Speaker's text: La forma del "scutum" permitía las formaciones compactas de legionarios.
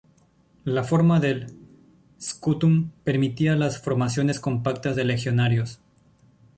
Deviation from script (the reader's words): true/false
false